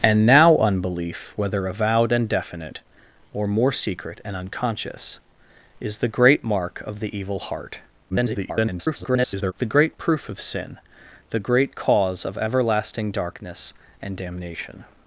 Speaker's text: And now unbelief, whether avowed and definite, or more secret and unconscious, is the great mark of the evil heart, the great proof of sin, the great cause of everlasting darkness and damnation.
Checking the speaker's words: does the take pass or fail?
fail